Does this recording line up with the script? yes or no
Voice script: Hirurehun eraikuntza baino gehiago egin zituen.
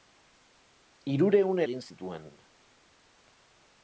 no